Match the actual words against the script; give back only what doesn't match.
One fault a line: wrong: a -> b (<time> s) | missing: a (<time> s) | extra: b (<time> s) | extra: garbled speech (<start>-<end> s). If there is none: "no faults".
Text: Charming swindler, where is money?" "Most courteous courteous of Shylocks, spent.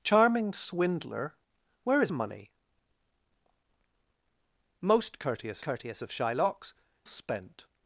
no faults